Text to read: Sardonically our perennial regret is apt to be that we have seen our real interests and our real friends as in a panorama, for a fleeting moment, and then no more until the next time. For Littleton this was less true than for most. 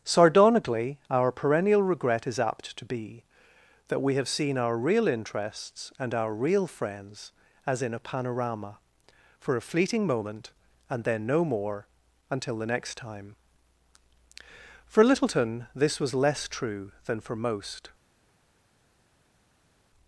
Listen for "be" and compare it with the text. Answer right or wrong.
right